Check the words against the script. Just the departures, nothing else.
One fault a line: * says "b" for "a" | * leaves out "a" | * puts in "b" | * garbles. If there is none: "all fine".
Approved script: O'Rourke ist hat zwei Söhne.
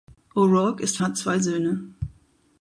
all fine